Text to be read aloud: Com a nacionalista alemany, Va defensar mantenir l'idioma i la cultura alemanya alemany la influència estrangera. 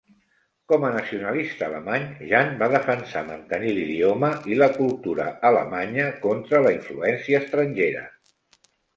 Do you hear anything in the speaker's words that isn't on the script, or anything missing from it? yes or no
yes